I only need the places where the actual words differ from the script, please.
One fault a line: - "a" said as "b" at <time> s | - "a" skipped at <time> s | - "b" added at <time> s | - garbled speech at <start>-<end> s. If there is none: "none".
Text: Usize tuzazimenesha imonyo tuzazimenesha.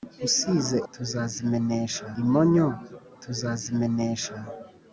none